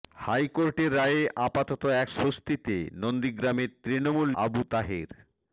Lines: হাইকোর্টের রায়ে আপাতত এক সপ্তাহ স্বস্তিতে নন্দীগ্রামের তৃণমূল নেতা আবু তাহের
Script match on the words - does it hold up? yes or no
no